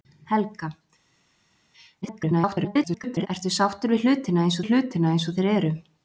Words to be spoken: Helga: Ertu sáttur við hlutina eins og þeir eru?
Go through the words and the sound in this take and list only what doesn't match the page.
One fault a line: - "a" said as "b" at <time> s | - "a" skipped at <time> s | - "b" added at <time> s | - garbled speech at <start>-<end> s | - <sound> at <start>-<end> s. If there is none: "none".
- garbled speech at 2.0-3.3 s
- "við hlutina eins" added at 4.6 s